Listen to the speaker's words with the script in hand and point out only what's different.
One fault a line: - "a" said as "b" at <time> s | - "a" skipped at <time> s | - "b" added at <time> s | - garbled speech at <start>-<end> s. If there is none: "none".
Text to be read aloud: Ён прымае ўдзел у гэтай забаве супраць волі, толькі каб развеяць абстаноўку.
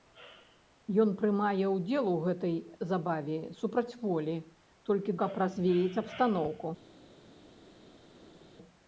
none